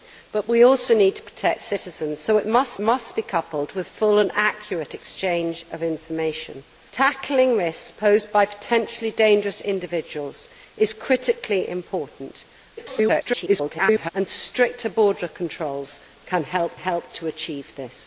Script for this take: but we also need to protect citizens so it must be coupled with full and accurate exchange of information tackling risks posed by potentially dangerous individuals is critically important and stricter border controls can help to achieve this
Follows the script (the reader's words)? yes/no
no